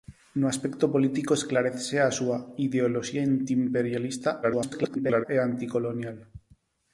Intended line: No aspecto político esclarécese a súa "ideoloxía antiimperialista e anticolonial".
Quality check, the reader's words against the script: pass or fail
fail